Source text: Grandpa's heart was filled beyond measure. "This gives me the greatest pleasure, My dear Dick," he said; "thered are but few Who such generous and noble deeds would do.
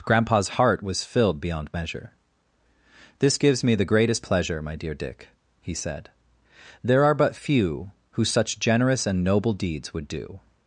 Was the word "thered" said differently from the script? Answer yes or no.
yes